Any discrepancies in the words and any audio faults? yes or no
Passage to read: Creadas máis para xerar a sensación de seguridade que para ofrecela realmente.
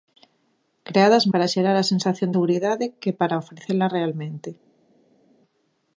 yes